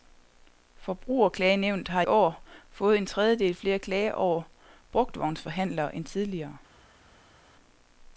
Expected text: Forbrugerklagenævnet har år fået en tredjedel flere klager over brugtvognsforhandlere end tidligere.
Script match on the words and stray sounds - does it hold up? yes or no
yes